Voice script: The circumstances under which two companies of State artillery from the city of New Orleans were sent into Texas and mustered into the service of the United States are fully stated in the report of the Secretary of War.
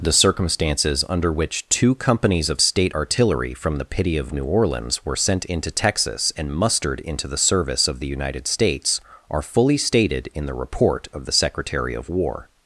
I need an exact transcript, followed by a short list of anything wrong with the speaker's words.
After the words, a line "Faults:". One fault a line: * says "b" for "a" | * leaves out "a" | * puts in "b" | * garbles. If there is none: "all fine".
The circumstances under which two companies of State artillery from the pity of New Orleans were sent into Texas and mustered into the service of the United States are fully stated in the report of the Secretary of War.
Faults:
* says "pity" for "city"